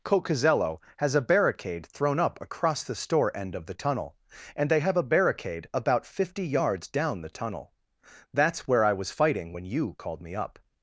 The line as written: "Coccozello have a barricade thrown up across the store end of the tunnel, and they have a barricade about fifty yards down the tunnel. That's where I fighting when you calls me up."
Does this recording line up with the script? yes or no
no